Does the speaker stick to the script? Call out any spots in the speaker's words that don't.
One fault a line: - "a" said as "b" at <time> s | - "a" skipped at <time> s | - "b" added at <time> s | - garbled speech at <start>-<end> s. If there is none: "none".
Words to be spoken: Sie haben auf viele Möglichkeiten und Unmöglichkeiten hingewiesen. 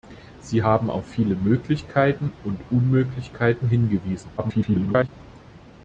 - garbled speech at 4.4-5.1 s